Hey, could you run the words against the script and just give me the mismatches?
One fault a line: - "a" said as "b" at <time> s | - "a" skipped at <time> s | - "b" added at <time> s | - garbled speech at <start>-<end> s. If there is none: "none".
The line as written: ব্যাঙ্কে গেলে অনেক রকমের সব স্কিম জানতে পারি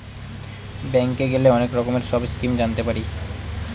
none